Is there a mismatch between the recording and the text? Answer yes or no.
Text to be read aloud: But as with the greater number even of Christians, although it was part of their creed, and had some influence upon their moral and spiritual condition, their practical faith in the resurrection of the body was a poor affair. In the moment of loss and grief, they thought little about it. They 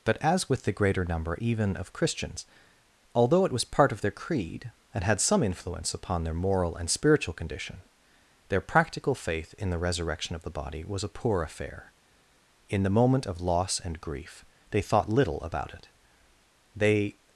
no